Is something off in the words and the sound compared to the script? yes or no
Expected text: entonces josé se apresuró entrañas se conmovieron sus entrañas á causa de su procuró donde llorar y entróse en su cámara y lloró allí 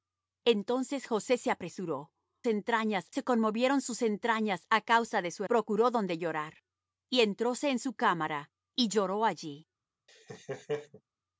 yes